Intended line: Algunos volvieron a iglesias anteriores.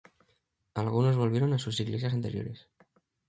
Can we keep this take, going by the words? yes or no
no